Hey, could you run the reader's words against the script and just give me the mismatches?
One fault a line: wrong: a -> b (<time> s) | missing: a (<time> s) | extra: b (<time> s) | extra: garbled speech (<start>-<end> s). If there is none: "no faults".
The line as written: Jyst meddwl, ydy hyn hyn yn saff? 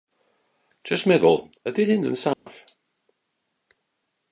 missing: hyn (2.1 s)